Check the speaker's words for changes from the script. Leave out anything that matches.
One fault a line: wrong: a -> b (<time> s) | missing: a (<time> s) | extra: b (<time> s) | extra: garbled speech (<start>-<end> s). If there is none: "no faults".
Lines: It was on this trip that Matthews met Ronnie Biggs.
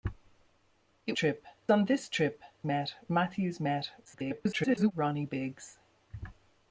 wrong: was -> trip (1.1 s)
wrong: that -> met (2.7 s)
extra: garbled speech (4.0-4.9 s)